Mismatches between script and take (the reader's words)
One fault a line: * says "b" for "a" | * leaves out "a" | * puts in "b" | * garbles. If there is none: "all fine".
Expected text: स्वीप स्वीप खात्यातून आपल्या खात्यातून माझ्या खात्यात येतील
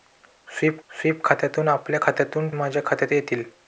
all fine